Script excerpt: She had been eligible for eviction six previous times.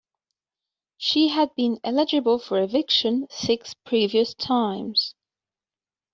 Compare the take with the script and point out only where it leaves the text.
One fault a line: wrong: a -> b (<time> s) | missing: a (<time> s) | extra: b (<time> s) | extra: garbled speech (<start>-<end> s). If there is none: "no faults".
no faults